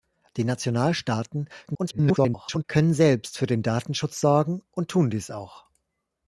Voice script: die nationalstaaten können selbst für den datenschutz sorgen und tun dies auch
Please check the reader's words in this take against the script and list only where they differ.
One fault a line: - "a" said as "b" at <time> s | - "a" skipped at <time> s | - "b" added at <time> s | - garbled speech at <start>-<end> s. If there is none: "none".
- garbled speech at 1.7-2.6 s